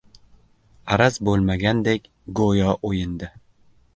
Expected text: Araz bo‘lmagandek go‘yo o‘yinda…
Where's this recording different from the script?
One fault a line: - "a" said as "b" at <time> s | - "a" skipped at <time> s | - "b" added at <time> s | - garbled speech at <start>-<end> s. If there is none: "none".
none